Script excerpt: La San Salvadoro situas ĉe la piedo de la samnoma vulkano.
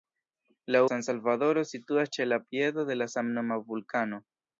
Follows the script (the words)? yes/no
yes